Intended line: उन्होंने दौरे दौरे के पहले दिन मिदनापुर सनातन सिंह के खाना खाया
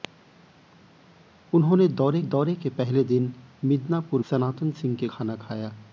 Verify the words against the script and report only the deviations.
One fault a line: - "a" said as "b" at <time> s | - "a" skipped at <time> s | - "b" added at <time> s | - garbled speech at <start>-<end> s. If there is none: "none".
none